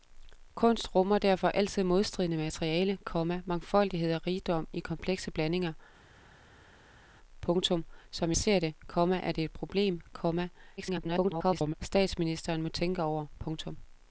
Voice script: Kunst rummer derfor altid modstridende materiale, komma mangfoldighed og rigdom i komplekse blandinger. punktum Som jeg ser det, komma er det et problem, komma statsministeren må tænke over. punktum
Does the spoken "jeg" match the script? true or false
false